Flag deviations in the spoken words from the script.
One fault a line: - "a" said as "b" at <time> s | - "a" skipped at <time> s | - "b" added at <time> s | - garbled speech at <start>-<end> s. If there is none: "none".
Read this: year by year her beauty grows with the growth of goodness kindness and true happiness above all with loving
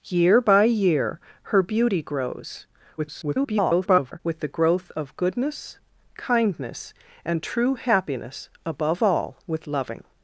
- garbled speech at 3.0-4.2 s